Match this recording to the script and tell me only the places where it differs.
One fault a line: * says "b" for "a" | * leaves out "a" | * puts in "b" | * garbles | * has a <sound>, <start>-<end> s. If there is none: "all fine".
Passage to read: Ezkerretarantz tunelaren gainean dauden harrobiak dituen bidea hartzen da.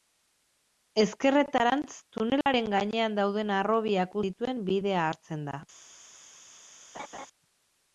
* has a dropout, 2.4-2.5 s
* has a laugh, 6.9-7.3 s